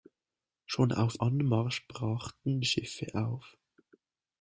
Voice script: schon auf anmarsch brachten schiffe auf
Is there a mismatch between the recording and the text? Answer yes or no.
no